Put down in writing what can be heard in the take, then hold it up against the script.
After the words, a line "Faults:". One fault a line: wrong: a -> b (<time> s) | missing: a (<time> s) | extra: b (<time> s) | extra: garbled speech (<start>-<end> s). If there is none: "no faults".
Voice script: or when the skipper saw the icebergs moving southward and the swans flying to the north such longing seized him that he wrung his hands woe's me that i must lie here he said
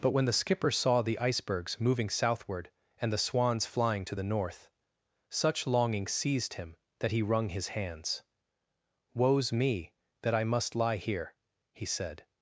but when the skipper saw the icebergs moving southward and the swans flying to the north such longing seized him that he wrung his hands woe's me that i must lie here he said
Faults:
wrong: or -> but (0.0 s)